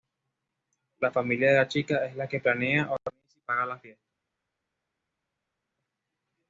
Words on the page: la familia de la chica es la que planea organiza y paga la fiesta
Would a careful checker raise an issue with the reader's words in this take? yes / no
no